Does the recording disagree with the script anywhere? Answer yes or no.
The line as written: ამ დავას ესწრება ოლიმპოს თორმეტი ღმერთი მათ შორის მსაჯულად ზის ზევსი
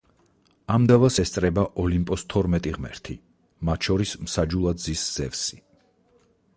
no